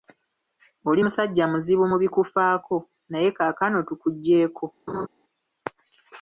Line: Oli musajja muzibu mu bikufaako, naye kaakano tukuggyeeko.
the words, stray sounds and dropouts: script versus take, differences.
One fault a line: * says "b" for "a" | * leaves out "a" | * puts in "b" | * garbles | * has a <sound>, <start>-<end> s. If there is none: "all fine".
* has a laugh, 4.9-5.1 s